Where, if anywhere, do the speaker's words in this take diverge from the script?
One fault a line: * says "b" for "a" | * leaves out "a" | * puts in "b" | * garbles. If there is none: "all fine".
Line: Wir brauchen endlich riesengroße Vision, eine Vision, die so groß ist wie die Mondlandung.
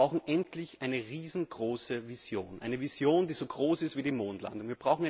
* puts in "eine"